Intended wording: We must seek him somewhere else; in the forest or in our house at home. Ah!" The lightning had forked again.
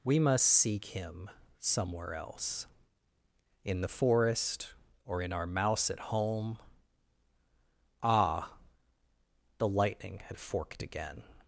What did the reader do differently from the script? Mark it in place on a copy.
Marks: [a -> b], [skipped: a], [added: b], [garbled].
We must seek him somewhere else; in the forest or in our [house -> mouse] at home. Ah!" The lightning had forked again.